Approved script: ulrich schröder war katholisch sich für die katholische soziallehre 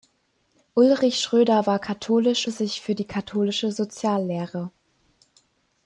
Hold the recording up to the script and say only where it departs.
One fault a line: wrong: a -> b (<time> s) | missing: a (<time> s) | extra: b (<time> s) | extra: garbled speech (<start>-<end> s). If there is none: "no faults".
no faults